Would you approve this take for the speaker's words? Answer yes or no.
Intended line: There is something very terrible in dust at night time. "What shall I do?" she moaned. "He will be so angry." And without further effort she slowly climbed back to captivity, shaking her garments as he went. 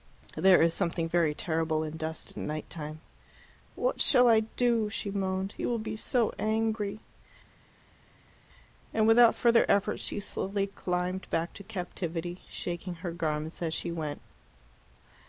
no